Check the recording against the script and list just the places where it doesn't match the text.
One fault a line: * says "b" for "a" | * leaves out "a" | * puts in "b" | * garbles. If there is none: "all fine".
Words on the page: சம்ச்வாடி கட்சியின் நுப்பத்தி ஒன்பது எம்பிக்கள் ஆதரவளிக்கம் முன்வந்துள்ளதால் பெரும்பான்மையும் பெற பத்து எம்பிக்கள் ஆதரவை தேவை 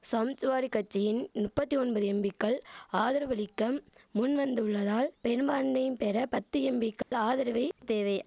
all fine